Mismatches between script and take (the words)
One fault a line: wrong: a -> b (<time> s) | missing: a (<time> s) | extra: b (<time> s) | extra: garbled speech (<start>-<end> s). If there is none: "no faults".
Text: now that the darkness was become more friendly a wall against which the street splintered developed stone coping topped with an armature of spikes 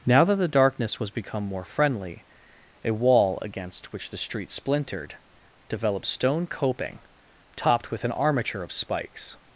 no faults